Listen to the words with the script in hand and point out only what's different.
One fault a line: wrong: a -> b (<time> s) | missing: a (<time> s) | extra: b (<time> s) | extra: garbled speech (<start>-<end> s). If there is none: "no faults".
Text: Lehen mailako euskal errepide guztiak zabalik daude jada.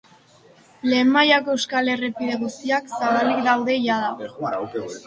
no faults